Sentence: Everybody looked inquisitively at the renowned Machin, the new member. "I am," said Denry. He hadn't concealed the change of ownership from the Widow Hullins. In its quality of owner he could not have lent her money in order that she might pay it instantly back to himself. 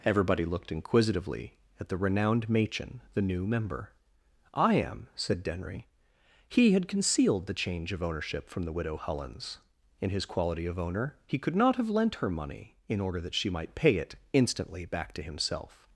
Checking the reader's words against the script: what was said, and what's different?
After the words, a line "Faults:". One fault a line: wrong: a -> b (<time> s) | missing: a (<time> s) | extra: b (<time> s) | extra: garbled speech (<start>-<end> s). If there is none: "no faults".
Everybody looked inquisitively at the renowned Machin, the new member. "I am," said Denry. He had concealed the change of ownership from the Widow Hullins. In his quality of owner he could not have lent her money in order that she might pay it instantly back to himself.
Faults:
wrong: hadn't -> had (6.7 s)
wrong: its -> his (10.1 s)